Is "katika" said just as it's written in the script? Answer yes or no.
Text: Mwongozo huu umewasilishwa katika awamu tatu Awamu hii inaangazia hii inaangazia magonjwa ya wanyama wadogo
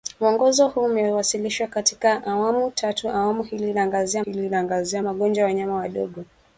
yes